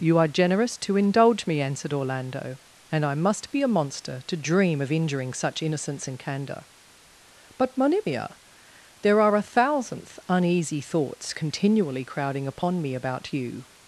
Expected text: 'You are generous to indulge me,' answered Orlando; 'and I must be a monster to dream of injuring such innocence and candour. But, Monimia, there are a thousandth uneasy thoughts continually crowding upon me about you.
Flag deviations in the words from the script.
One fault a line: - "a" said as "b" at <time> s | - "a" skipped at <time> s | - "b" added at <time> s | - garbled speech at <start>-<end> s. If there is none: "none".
none